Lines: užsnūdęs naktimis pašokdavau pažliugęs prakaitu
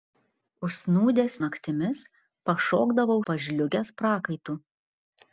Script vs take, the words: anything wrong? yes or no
no